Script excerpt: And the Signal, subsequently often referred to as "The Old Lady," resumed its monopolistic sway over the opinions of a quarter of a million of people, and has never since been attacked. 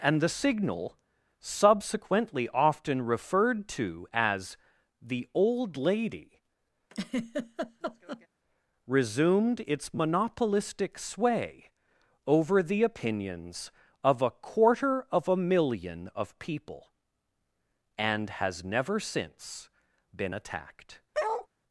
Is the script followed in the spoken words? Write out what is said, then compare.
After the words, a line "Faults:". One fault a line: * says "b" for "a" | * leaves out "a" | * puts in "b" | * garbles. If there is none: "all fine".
And the Signal, subsequently often referred to as "The Old Lady," resumed its monopolistic sway over the opinions of a quarter of a million of people, and has never since been attacked.
Faults:
all fine